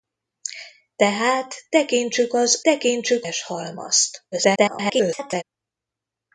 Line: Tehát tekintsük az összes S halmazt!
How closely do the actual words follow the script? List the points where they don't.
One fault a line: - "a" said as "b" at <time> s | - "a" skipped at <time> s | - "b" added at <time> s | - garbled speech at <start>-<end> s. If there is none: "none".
- "összes" said as "tekintsük" at 2.6 s
- garbled speech at 4.3-5.4 s